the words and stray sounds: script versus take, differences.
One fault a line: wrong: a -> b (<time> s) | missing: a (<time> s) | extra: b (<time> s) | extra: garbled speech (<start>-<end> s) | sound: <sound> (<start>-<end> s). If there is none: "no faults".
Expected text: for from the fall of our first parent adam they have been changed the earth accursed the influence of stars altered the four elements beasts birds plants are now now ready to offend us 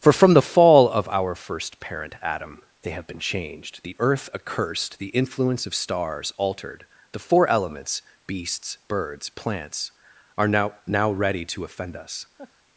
sound: laugh (12.4-12.5 s)